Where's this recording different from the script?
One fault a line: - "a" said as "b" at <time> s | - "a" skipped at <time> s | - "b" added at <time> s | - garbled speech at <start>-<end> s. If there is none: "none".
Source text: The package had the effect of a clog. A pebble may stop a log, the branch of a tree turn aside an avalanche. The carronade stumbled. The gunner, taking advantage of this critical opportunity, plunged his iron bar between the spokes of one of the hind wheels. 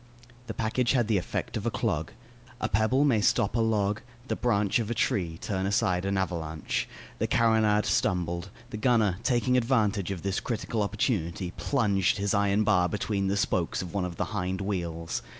none